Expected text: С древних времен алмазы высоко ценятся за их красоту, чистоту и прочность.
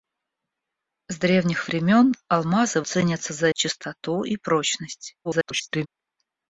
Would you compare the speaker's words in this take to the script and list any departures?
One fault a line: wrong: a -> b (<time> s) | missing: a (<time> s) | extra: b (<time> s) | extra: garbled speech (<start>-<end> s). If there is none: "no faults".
missing: высоко (2.8 s)
missing: их красоту (3.5 s)
extra: garbled speech (5.2-5.9 s)